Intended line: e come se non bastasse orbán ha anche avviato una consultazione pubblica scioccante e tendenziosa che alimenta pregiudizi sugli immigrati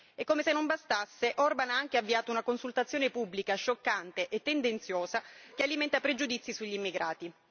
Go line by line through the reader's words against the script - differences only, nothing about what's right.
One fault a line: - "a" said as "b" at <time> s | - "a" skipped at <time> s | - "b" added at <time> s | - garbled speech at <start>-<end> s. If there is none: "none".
none